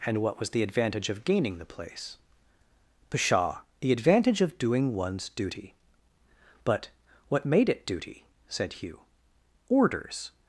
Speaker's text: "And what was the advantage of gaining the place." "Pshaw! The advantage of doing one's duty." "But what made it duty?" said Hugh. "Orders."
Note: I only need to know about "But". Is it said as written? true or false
true